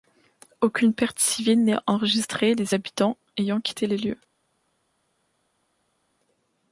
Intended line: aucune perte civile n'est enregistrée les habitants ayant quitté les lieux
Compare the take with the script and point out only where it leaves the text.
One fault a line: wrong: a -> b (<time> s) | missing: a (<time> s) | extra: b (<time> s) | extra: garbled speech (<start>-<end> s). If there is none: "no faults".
no faults